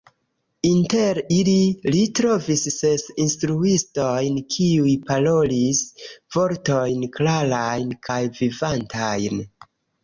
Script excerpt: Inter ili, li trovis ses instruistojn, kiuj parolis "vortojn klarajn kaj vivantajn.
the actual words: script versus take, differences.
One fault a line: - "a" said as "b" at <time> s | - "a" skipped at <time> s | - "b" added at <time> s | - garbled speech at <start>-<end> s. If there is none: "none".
none